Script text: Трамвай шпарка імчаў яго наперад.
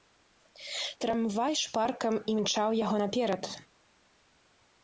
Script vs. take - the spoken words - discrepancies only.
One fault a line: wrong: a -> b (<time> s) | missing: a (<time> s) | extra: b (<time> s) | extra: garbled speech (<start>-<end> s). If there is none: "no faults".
no faults